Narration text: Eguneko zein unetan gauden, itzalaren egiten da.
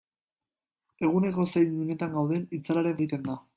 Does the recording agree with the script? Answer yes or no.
yes